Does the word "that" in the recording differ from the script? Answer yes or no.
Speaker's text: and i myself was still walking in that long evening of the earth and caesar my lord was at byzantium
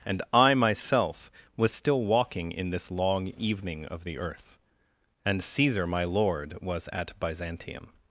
yes